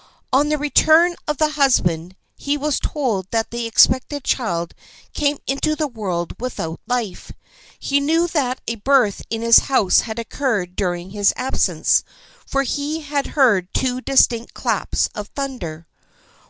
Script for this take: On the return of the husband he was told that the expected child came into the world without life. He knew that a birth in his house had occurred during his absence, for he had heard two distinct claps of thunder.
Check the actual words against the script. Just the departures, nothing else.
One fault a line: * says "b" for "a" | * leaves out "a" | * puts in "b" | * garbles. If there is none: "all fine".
all fine